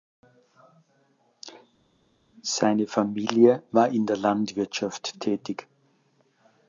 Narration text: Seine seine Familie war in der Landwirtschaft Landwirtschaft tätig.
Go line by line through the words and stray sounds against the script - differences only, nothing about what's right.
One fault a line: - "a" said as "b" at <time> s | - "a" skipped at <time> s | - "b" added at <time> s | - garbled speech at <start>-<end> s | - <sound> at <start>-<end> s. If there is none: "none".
- "seine" skipped at 2.9 s
- "Landwirtschaft" skipped at 5.2 s